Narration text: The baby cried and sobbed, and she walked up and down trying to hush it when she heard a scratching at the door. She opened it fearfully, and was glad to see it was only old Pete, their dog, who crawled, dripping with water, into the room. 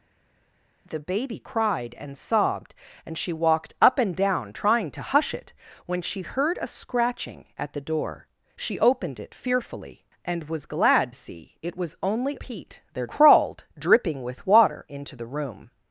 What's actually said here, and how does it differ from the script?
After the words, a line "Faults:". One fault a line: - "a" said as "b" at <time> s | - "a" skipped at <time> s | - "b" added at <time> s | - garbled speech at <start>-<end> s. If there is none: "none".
The baby cried and sobbed, and she walked up and down trying to hush it when she heard a scratching at the door. She opened it fearfully, and was glad see it was only Pete, their crawled, dripping with water, into the room.
Faults:
- "to" skipped at 11.1 s
- "old" skipped at 12.4 s
- "dog who" skipped at 13.1 s